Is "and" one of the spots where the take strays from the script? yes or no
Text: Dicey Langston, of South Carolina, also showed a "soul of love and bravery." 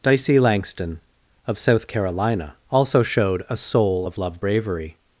yes